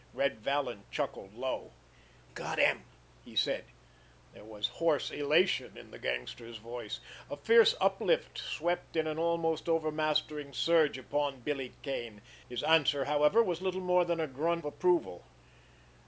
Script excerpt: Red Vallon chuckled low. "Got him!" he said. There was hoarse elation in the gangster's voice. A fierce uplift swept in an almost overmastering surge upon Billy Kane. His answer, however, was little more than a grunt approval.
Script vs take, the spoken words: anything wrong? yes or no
no